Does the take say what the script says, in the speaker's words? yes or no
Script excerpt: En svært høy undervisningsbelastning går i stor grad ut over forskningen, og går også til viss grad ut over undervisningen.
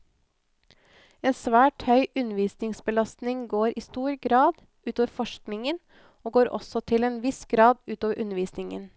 no